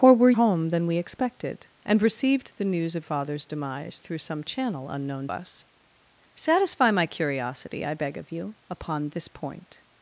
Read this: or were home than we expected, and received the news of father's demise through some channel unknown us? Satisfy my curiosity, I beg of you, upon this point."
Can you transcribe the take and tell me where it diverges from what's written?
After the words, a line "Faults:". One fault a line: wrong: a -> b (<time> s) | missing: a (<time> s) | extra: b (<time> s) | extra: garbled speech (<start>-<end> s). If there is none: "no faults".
or were home than we expected, and received the news of father's demise through some channel unknown us? Satisfy my curiosity, I beg of you, upon this point."
Faults:
no faults